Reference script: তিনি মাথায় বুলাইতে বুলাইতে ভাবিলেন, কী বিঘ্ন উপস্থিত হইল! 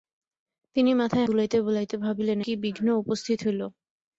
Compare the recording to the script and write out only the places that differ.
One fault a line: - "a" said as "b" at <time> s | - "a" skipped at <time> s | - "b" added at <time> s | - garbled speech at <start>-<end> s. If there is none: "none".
none